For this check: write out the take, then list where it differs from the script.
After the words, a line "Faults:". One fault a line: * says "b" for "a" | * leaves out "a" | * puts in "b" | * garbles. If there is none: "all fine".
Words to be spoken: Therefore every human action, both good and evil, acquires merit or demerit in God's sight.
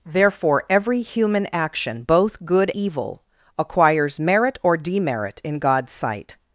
Therefore every human action, both good evil, acquires merit or demerit in God's sight.
Faults:
* leaves out "and"